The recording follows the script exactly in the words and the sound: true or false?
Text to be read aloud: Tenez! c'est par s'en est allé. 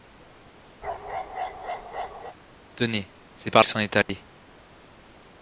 false